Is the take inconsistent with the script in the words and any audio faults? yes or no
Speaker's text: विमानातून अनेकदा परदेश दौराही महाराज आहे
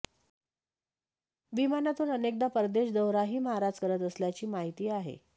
yes